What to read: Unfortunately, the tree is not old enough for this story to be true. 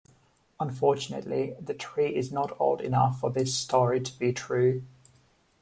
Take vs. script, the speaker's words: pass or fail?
pass